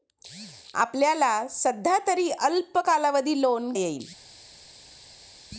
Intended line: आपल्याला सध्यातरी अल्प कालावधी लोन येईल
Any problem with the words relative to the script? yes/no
no